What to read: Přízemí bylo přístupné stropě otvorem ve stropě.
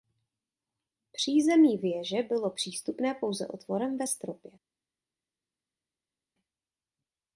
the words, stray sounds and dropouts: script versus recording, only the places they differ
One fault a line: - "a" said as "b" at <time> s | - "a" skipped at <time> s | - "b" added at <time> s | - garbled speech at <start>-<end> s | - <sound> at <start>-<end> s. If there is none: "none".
- "věže" added at 1.8 s
- "stropě" said as "pouze" at 3.1 s